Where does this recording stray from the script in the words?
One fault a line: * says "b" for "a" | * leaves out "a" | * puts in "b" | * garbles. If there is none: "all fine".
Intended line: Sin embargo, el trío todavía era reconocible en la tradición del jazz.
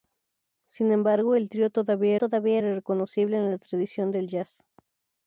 * puts in "todavía"